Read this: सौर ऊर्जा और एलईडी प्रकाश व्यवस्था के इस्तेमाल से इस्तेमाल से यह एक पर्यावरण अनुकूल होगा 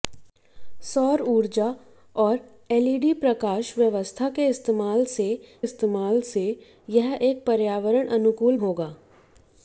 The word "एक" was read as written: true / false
true